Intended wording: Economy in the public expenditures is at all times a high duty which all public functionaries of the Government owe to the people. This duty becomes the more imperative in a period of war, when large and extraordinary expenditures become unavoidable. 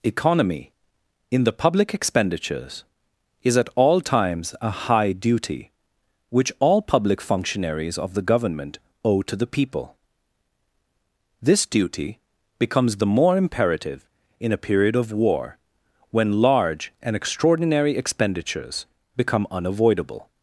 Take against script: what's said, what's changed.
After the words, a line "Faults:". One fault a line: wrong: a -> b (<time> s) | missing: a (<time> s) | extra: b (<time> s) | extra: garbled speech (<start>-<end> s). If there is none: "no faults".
Economy in the public expenditures is at all times a high duty which all public functionaries of the Government owe to the people. This duty becomes the more imperative in a period of war, when large and extraordinary expenditures become unavoidable.
Faults:
no faults